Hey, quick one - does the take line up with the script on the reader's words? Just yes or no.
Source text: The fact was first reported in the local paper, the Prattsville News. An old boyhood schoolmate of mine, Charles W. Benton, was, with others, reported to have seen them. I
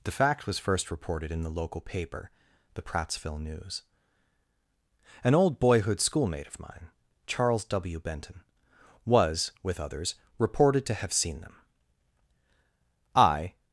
yes